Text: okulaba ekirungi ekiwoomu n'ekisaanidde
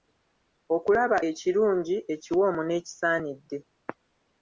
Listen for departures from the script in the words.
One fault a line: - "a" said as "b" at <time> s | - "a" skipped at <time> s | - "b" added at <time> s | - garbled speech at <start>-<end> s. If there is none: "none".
none